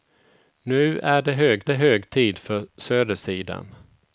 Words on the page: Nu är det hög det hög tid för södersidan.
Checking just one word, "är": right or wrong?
right